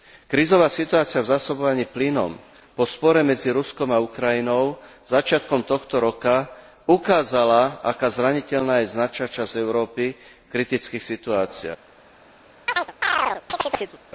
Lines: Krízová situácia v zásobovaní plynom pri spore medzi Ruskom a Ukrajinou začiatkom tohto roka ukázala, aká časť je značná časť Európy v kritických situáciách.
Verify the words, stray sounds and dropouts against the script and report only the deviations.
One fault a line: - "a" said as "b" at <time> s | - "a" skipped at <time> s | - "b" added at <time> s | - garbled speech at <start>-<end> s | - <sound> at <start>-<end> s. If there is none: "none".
- "pri" said as "po" at 2.7 s
- "časť" said as "zraniteľná" at 8.1 s
- chirp at 12.7-14.0 s